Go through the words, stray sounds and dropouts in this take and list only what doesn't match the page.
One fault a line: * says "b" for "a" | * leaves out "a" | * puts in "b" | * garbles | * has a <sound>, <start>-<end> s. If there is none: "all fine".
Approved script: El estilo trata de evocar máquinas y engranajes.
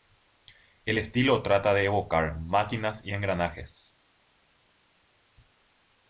all fine